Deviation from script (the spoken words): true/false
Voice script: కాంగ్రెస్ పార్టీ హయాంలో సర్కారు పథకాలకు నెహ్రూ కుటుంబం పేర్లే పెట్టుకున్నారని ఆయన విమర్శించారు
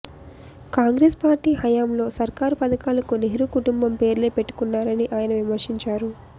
false